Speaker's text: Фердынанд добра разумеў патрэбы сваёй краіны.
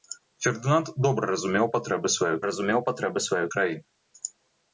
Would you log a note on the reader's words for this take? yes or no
yes